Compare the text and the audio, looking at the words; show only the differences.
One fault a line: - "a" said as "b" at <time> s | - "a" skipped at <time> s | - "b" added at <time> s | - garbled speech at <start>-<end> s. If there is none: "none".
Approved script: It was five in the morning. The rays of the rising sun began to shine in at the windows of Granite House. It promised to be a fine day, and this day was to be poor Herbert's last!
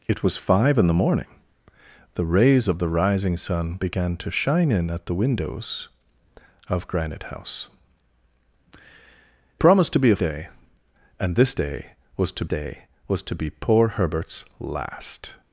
- "It" skipped at 7.7 s
- "fine" skipped at 10.2 s
- "day was to" added at 12.4 s